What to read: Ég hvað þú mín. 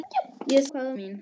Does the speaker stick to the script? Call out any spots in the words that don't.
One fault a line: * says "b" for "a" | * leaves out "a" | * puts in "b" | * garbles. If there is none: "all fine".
all fine